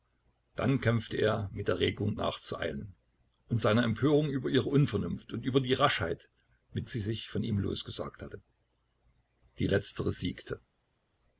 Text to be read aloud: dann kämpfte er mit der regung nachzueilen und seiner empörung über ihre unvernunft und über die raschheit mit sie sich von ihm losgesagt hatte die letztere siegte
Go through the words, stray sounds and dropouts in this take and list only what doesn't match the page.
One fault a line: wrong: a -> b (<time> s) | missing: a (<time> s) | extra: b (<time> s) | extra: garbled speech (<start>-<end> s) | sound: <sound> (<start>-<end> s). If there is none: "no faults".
no faults